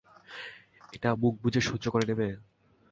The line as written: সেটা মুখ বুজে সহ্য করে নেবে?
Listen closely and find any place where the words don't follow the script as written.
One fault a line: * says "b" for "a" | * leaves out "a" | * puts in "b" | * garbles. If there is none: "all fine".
* says "এটা" for "সেটা"